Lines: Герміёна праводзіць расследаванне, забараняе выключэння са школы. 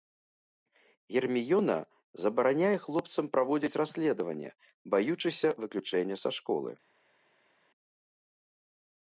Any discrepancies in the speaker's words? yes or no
yes